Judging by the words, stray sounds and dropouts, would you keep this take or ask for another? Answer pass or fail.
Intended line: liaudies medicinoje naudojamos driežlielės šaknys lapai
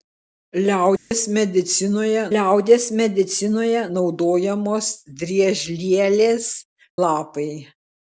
fail